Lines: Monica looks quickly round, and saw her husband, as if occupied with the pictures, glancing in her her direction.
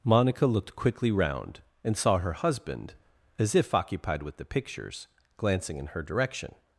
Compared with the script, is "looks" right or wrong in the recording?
wrong